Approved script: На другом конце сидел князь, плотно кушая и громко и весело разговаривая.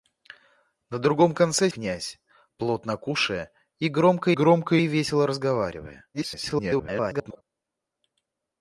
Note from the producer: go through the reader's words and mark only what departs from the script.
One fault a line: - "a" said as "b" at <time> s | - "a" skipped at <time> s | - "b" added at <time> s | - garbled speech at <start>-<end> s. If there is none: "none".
- "сидел" skipped at 1.7 s
- "громко" added at 4.3 s
- garbled speech at 6.1-7.4 s